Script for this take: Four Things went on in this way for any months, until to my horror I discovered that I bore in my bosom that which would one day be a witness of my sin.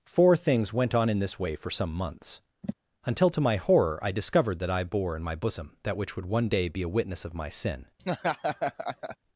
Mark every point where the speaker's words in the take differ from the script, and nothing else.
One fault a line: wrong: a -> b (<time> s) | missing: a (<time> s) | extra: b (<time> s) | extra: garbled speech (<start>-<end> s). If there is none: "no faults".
wrong: any -> some (1.7 s)